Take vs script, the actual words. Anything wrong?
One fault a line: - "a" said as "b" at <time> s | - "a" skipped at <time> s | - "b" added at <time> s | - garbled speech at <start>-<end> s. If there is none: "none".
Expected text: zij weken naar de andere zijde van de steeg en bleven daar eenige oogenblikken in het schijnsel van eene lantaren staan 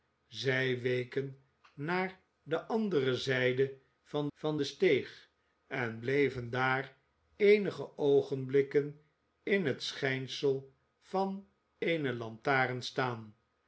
- "van" added at 4.3 s